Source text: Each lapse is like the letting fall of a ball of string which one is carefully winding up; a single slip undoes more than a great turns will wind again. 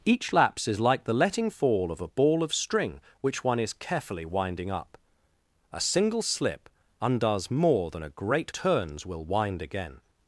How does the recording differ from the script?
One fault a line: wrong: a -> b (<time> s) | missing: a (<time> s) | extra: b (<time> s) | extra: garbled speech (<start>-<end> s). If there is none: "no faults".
no faults